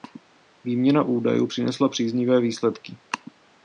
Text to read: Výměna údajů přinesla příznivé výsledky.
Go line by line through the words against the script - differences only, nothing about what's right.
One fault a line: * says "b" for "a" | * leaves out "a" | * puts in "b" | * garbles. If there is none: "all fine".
all fine